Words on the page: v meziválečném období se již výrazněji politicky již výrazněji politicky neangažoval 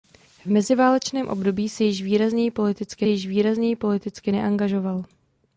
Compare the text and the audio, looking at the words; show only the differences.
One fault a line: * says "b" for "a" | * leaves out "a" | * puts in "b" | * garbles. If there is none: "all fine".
all fine